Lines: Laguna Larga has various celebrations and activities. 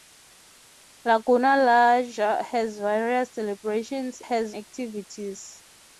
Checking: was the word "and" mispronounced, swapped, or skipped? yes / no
yes